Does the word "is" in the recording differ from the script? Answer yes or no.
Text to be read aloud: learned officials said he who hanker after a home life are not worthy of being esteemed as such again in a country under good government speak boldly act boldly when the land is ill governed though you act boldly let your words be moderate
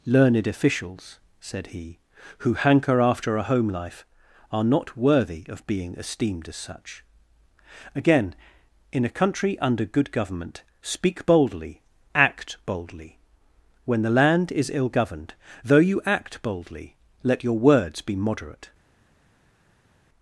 no